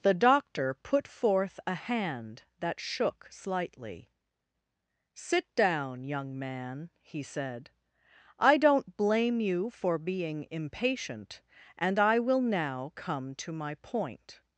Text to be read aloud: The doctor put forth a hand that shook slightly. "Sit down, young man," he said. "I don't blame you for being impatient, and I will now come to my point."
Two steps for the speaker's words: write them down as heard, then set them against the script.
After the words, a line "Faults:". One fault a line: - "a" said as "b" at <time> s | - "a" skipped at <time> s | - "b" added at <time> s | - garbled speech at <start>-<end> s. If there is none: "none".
The doctor put forth a hand that shook slightly. "Sit down, young man," he said. "I don't blame you for being impatient, and I will now come to my point."
Faults:
none